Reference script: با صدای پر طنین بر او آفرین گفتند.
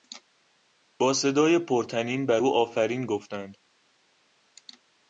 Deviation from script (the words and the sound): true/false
false